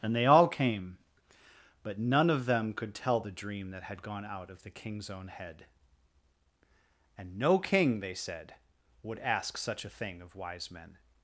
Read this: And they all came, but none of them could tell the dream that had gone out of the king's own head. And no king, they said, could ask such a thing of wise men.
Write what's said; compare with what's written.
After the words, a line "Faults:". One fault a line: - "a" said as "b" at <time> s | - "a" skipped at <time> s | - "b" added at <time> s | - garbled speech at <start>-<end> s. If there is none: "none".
And they all came, but none of them could tell the dream that had gone out of the king's own head. And no king, they said, would ask such a thing of wise men.
Faults:
- "could" said as "would" at 9.0 s